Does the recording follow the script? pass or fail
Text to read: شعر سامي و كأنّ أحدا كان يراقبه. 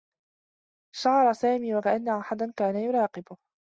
pass